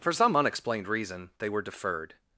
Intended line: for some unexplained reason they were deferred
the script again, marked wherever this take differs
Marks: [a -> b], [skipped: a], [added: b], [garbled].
for some unexplained reason they were deferred